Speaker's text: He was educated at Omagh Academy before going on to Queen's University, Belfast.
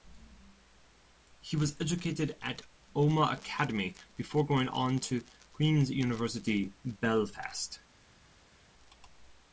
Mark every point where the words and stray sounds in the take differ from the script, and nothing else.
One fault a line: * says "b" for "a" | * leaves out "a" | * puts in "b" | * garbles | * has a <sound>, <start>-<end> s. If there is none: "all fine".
all fine